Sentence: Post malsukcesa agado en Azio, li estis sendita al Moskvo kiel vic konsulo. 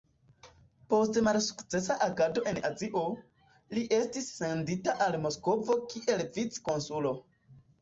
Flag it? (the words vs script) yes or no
no